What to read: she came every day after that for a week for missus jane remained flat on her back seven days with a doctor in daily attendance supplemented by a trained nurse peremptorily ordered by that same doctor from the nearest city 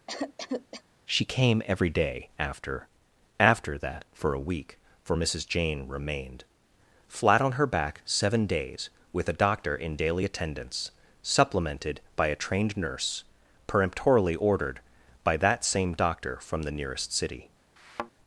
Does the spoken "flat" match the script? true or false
true